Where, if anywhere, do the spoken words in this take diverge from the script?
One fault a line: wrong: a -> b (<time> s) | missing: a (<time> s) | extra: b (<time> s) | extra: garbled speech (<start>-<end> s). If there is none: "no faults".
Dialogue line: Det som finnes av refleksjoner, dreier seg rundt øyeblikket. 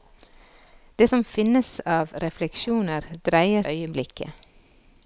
missing: seg rundt (3.6 s)